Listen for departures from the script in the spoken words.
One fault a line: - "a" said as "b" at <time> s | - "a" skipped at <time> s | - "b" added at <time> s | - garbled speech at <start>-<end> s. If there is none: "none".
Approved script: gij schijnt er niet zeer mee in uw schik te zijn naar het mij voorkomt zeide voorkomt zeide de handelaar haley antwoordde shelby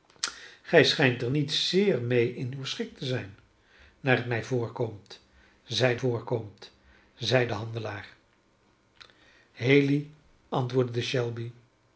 none